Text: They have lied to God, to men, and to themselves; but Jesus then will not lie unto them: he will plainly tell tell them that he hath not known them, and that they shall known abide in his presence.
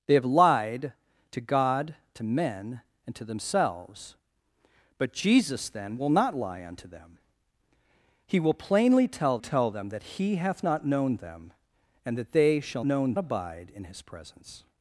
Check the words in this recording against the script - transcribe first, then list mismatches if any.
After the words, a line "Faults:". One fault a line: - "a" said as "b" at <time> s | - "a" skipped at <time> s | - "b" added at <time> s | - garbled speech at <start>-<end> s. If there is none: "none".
They have lied to God, to men, and to themselves; but Jesus then will not lie unto them: he will plainly tell tell them that he hath not known them, and that they shall known abide in his presence.
Faults:
none